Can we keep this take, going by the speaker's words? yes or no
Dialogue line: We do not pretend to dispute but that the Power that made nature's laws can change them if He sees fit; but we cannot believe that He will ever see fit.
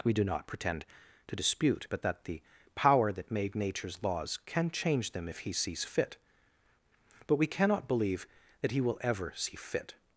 yes